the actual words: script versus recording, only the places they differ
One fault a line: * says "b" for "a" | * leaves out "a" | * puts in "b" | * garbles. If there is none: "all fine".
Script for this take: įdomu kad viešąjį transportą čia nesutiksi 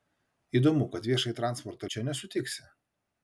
all fine